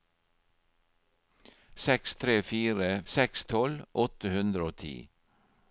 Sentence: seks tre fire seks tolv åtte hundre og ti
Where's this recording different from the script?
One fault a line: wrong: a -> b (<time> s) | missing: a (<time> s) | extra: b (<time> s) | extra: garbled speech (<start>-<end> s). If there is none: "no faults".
no faults